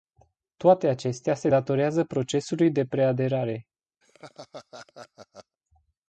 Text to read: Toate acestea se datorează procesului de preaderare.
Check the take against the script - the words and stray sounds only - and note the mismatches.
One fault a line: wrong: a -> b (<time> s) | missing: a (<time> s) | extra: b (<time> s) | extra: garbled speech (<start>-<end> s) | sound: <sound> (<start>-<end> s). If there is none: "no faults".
sound: laugh (4.0-5.6 s)